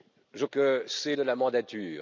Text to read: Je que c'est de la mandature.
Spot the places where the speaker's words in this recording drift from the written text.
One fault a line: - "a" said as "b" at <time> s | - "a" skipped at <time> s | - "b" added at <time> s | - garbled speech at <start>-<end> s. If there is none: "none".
none